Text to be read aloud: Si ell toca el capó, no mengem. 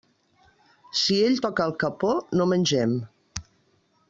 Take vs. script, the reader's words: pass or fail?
pass